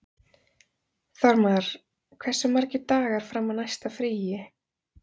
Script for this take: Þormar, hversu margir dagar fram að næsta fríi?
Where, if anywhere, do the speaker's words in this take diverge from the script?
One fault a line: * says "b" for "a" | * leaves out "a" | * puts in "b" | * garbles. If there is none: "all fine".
all fine